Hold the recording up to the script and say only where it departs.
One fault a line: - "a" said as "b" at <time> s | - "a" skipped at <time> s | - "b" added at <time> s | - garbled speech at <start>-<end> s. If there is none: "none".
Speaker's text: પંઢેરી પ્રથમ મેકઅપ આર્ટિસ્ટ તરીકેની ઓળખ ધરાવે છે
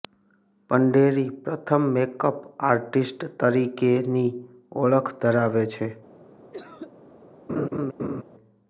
none